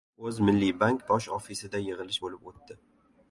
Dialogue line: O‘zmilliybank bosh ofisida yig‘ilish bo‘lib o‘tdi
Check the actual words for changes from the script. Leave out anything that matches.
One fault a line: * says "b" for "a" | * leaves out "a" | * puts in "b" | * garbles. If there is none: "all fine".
all fine